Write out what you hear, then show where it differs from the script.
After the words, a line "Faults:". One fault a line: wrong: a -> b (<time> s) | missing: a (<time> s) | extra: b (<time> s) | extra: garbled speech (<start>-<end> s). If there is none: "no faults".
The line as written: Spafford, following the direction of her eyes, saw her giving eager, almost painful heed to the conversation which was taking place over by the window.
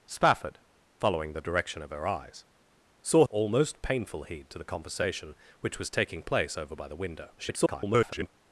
Spafford, following the direction of her eyes, saw almost painful heed to the conversation which was taking place over by the window. [garbled]
Faults:
missing: her giving eager (3.2 s)
extra: garbled speech (7.4-8.3 s)